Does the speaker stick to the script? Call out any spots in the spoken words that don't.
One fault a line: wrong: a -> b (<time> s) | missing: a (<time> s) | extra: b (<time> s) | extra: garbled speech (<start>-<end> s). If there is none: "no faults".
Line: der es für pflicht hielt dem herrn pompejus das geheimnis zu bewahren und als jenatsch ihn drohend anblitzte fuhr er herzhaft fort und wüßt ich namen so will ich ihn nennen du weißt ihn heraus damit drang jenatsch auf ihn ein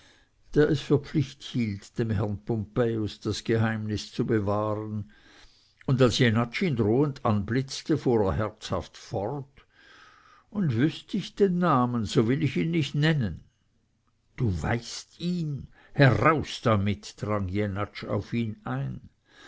extra: den (11.4 s)
extra: nicht (12.7 s)